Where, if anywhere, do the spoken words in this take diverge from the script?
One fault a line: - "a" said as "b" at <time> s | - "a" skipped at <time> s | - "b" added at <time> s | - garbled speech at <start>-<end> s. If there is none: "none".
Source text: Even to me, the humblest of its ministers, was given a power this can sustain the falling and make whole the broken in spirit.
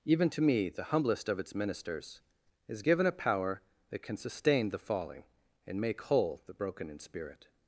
- "was" said as "is" at 2.7 s
- "this" said as "that" at 3.9 s